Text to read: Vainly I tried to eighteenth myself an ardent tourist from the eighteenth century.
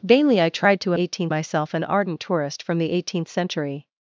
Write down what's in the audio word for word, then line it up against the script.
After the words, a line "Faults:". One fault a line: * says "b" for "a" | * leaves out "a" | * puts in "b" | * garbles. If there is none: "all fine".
Vainly I tried to eighteenth myself an ardent tourist from the eighteenth century.
Faults:
all fine